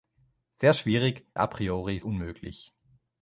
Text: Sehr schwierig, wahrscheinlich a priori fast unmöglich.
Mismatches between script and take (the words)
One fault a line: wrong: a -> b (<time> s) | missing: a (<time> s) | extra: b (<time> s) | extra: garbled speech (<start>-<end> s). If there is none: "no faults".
missing: wahrscheinlich (1.3 s)
missing: fast (2.0 s)